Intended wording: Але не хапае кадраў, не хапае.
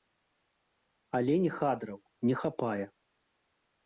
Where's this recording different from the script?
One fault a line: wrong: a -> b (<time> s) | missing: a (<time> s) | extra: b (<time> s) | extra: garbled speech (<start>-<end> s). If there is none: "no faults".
missing: хапае (1.5 s)